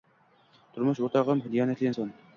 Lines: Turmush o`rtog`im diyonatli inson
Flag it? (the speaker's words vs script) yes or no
no